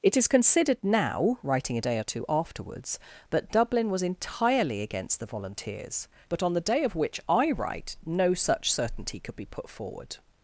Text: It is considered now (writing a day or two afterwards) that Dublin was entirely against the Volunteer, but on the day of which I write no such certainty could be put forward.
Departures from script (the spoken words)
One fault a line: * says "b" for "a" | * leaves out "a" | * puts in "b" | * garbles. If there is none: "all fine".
* says "Volunteers" for "Volunteer"